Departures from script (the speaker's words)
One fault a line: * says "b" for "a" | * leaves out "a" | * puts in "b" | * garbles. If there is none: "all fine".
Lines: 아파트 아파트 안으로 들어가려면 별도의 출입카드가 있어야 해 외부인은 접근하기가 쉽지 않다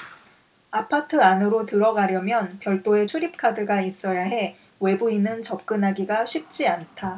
* leaves out "아파트"